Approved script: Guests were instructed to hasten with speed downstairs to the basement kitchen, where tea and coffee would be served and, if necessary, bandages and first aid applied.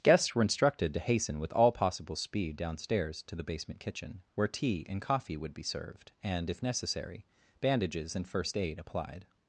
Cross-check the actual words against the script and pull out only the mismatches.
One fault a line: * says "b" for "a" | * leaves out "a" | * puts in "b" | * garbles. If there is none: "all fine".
* puts in "all possible"